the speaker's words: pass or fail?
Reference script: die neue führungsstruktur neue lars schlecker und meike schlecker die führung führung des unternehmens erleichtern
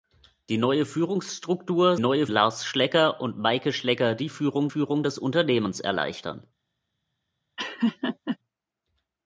pass